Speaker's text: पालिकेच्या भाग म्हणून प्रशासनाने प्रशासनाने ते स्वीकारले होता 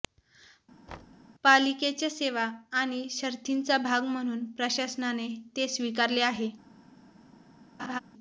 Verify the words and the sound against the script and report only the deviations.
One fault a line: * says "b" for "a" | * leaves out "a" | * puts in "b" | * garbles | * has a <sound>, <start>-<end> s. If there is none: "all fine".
* has a thud, 0.9-1.3 s
* puts in "सेवा आणि शर्थींचा"
* leaves out "प्रशासनाने"
* says "आहे" for "होता"
* has a laugh, 7.8-8.0 s